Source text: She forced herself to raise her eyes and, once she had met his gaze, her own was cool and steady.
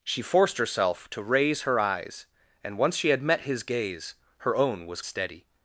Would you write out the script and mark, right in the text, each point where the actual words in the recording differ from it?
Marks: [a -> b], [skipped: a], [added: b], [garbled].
She forced herself to raise her eyes and, once she had met his gaze, her own was [skipped: cool and] steady.